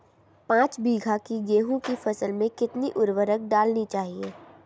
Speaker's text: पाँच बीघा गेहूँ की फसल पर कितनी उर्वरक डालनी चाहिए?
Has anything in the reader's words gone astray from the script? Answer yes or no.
yes